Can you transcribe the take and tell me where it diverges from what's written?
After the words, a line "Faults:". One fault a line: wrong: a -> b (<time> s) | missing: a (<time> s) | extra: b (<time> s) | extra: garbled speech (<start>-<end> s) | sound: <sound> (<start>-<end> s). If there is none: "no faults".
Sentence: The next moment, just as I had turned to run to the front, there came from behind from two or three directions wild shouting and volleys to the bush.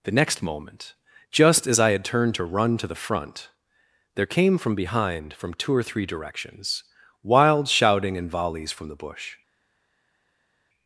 The next moment, just as I had turned to run to the front, there came from behind from two or three directions wild shouting and volleys from the bush.
Faults:
wrong: to -> from (8.7 s)